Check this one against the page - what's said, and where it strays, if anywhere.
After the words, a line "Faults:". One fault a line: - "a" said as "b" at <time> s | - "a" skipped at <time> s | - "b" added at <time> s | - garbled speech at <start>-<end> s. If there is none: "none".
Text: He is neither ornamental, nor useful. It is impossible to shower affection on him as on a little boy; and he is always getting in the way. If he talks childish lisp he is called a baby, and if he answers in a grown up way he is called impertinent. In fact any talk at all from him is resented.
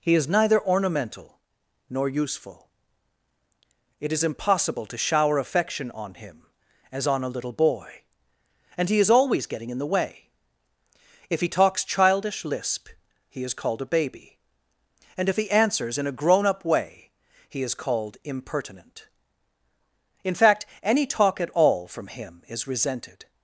He is neither ornamental, nor useful. It is impossible to shower affection on him as on a little boy; and he is always getting in the way. If he talks childish lisp he is called a baby, and if he answers in a grown up way he is called impertinent. In fact any talk at all from him is resented.
Faults:
none